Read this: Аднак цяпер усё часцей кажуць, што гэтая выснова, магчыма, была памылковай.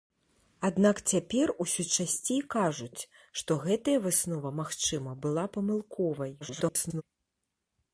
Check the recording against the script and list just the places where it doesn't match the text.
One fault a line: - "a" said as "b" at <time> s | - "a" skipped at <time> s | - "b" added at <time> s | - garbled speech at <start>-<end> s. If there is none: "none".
- garbled speech at 6.4-7.0 s